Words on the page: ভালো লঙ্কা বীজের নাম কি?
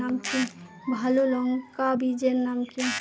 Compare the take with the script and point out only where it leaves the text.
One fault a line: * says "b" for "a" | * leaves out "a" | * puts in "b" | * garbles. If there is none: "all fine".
all fine